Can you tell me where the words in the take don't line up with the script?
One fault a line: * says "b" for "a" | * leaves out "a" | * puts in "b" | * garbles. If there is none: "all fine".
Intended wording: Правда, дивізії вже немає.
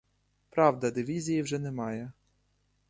all fine